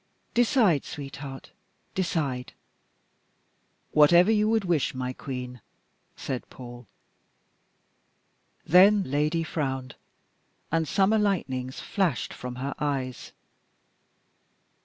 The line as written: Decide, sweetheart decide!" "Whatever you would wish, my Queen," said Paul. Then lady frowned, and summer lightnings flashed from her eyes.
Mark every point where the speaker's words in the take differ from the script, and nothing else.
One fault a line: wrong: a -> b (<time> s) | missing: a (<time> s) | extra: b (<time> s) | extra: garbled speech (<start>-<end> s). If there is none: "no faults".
no faults